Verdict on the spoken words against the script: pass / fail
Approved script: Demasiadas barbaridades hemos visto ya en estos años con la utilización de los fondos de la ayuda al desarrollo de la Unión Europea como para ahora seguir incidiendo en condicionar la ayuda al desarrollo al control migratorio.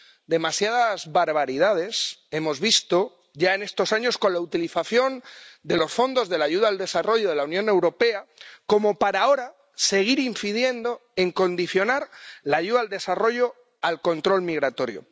pass